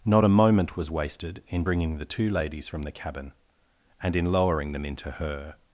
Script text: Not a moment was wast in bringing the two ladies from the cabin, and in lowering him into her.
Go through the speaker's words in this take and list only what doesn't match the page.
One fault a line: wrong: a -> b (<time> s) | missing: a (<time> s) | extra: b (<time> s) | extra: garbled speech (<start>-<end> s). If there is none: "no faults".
wrong: wast -> wasted (0.9 s)
wrong: him -> them (4.7 s)